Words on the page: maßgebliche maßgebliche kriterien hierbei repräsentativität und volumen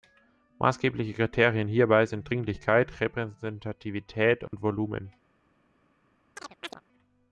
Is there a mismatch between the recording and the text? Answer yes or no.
yes